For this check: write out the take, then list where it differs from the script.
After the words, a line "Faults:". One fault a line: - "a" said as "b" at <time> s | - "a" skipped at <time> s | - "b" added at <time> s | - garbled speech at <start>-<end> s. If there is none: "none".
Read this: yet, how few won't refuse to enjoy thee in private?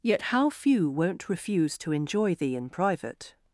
yet, how few won't refuse to enjoy thee in private?
Faults:
none